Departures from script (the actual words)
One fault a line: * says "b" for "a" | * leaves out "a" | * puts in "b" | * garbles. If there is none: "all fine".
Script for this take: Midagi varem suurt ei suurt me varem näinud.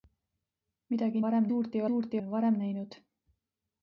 all fine